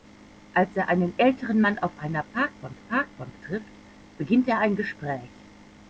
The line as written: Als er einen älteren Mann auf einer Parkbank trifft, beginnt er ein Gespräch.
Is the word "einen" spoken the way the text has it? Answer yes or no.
yes